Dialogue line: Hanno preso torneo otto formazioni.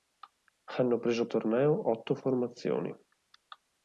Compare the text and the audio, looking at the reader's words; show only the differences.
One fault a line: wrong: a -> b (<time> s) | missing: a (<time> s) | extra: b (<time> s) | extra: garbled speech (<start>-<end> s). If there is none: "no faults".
no faults